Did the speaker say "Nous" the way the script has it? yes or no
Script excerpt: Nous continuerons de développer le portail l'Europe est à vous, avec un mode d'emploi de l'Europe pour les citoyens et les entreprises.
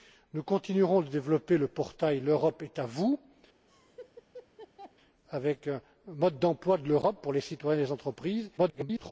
yes